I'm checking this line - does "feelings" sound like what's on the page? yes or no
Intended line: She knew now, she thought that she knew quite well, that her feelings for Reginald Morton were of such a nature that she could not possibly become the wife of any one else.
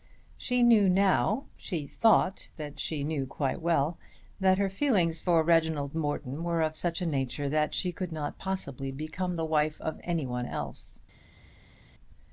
yes